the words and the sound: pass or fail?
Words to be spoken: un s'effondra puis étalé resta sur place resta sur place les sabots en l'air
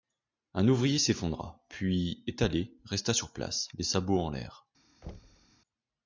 fail